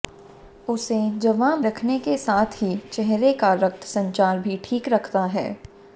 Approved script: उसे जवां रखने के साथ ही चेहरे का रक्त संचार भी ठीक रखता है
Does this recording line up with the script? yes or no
yes